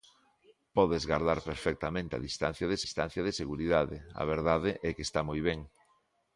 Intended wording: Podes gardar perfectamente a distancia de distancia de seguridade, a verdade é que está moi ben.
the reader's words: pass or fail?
pass